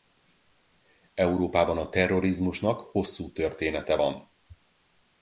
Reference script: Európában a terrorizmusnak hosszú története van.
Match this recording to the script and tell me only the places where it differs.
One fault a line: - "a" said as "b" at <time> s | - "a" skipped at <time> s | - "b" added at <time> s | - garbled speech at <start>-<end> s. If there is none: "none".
none